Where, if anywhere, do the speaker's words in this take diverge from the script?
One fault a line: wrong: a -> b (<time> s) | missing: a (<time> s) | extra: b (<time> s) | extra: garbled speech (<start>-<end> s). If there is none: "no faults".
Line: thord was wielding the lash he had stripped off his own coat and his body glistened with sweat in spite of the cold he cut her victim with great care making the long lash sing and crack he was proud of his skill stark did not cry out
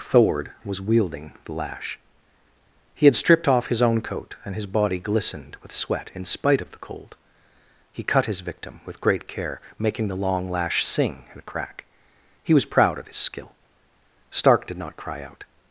wrong: her -> his (8.2 s)